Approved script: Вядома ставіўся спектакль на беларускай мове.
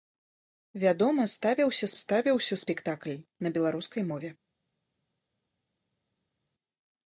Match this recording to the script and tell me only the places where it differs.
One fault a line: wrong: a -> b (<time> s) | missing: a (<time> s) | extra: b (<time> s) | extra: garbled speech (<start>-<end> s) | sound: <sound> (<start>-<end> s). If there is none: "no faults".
extra: ставіўся (2.0 s)